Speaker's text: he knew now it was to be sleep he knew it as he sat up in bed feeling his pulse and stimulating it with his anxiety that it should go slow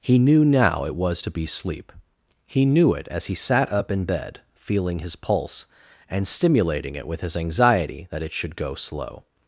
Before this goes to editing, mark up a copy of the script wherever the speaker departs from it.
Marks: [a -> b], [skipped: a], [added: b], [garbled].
he knew now it was to be sleep he knew it as he sat up in bed feeling his pulse and stimulating it with his anxiety that it should go slow